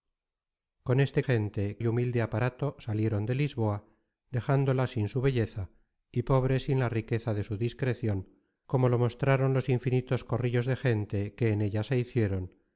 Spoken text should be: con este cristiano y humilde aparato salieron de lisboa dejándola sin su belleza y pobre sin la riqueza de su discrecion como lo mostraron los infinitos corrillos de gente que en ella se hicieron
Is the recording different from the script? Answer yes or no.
yes